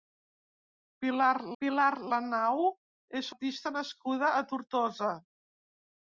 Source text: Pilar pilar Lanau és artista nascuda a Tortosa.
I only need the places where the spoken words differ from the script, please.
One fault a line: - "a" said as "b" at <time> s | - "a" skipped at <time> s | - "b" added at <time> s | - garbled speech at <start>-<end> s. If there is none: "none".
none